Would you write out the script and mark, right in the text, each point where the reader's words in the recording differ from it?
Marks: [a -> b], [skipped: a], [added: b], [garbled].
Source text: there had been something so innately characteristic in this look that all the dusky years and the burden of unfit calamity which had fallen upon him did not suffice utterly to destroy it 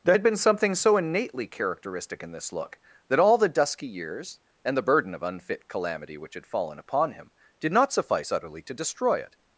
there had been something so innately characteristic in this look that all the dusky years and the burden of unfit calamity which had fallen upon him did not suffice utterly to destroy it